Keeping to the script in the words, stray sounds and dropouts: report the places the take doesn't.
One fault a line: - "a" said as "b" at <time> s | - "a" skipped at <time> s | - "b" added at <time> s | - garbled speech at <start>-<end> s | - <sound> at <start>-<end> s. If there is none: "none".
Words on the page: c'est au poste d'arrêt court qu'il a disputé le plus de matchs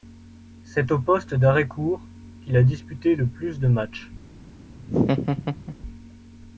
- laugh at 4.8-5.8 s